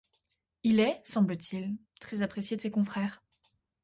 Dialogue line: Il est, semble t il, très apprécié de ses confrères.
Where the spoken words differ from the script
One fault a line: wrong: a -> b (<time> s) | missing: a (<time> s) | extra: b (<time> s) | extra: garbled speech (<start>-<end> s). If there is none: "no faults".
no faults